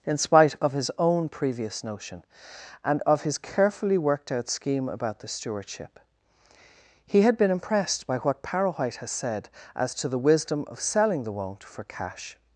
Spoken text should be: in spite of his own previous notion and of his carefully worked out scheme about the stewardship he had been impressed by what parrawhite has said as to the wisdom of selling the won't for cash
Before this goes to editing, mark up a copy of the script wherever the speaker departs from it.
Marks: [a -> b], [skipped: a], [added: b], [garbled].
in spite of his own previous notion and of his carefully worked out scheme about the stewardship he had been impressed by what parrawhite has said as to the wisdom of selling the won't for cash